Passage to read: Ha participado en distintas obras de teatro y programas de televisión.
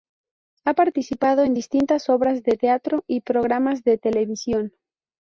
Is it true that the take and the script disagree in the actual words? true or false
false